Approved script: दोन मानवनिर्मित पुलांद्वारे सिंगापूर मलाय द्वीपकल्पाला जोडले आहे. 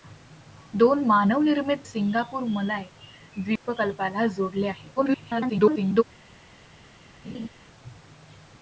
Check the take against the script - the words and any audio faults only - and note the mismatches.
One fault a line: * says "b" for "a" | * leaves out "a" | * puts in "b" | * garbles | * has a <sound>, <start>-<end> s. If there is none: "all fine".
* leaves out "पुलांद्वारे"
* has a dropout, 3.6-3.6 s
* garbles
* has a laugh, 7.2-7.5 s